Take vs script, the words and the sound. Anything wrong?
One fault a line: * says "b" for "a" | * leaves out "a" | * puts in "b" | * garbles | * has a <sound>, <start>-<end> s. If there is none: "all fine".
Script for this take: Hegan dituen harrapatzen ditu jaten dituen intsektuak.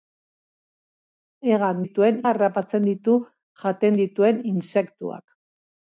all fine